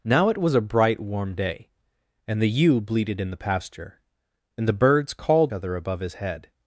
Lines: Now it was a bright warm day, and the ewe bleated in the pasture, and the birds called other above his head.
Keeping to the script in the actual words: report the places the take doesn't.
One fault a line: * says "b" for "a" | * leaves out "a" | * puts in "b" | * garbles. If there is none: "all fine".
all fine